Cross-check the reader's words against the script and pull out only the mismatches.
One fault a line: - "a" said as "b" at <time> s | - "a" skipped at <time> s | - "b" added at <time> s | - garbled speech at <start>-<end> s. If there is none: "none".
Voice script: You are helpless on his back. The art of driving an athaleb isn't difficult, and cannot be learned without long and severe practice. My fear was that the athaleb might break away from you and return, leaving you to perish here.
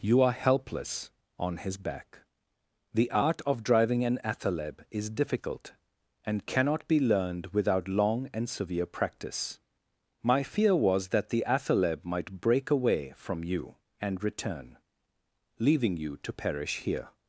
- "isn't" said as "is" at 4.9 s